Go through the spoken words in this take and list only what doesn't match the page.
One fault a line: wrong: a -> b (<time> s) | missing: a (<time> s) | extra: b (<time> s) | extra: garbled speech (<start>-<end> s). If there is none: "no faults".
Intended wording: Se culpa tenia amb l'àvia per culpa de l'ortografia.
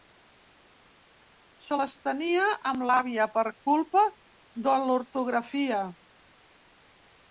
wrong: culpa -> les (1.8 s)